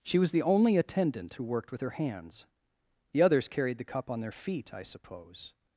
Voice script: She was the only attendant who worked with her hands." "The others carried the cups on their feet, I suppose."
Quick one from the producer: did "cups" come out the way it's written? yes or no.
no